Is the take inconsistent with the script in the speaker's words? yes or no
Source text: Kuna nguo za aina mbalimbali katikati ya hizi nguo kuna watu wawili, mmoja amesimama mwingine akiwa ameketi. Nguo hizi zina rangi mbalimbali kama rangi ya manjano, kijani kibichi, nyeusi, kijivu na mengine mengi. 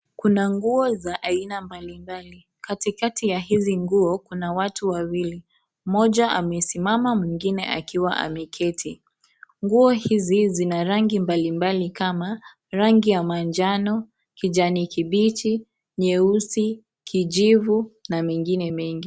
no